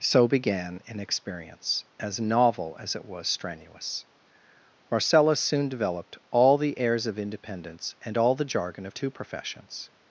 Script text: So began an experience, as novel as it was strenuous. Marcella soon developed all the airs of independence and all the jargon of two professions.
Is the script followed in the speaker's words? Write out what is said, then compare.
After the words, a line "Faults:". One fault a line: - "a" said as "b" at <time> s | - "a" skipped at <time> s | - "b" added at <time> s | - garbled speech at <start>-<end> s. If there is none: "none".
So began an experience, as novel as it was strenuous. Marcella soon developed all the airs of independence and all the jargon of two professions.
Faults:
none